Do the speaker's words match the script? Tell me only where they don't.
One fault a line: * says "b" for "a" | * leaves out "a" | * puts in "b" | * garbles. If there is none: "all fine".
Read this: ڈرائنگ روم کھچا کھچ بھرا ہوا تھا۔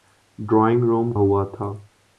* leaves out "کھچا کھچ بھرا"